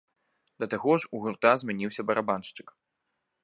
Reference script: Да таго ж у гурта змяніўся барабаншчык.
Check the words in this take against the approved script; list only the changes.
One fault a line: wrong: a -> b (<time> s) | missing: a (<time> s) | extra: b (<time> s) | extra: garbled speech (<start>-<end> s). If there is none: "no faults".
no faults